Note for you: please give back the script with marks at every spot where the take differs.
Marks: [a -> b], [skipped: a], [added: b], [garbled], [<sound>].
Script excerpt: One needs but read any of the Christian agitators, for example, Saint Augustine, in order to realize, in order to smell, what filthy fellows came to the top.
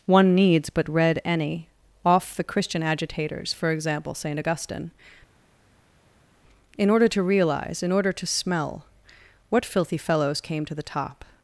One needs but read any [of -> off] the Christian agitators, for example, Saint Augustine, in order to realize, in order to smell, what filthy fellows came to the top.